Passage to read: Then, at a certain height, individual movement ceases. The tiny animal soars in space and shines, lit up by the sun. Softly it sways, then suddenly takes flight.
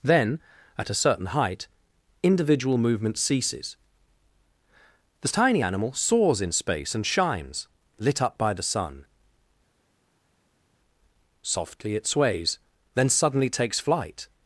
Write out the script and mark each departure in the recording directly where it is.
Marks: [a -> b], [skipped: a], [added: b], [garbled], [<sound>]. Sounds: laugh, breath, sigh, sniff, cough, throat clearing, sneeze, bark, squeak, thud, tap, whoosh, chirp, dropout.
Then, at a certain height, individual movement ceases. The tiny animal soars in space and shines, lit up by the sun. Softly it sways, then suddenly takes flight.